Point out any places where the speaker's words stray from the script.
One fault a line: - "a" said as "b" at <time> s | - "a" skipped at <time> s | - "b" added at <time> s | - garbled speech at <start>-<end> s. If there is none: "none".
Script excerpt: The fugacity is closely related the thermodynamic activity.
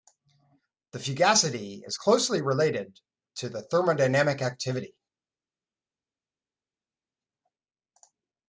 - "to" added at 3.3 s